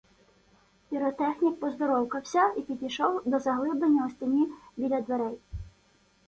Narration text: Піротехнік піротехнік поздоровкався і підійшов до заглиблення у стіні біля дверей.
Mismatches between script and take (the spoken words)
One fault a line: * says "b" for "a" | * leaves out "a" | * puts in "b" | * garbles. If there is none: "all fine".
* leaves out "піротехнік"